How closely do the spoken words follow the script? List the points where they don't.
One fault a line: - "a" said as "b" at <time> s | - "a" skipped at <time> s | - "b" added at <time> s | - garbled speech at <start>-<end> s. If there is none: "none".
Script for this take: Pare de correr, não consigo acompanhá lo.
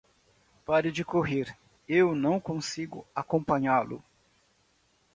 - "eu" added at 1.9 s